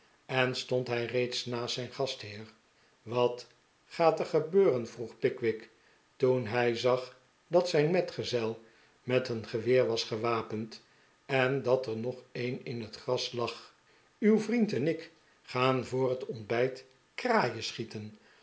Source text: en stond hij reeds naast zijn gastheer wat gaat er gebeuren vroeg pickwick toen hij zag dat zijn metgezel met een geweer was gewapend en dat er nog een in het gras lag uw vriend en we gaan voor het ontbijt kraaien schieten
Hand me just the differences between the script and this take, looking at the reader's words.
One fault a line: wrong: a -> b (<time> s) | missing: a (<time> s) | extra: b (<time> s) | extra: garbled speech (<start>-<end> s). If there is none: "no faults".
wrong: we -> ik (14.9 s)